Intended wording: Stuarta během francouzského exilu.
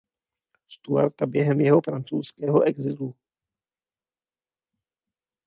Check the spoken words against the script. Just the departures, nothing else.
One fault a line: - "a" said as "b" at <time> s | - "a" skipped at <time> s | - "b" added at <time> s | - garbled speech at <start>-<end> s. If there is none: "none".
- "jeho" added at 1.6 s